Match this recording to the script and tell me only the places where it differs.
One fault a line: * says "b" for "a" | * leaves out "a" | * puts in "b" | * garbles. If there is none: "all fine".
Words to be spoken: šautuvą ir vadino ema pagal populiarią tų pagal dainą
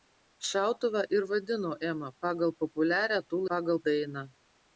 all fine